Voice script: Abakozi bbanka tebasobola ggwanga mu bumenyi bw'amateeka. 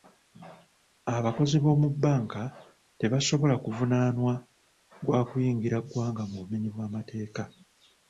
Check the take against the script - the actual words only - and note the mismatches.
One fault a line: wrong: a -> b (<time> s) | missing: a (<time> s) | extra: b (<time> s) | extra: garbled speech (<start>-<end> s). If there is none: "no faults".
extra: b'omu (1.6 s)
extra: kuvunaanwa gwa kuyingira (3.6 s)